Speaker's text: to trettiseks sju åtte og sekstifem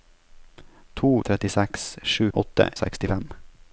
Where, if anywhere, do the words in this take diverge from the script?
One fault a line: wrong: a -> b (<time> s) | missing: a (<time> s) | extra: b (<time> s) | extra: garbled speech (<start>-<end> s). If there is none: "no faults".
no faults